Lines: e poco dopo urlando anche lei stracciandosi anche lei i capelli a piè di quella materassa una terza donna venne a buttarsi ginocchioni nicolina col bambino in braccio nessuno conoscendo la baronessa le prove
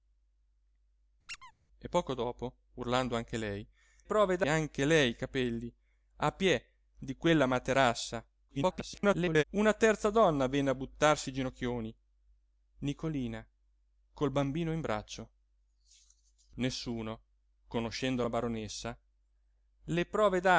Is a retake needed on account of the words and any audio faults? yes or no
yes